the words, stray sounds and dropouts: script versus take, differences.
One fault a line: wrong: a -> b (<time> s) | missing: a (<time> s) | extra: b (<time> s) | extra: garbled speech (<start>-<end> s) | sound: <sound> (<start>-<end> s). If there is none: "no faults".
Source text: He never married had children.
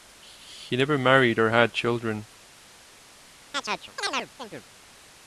extra: or (1.4 s)
sound: chirp (3.5-4.6 s)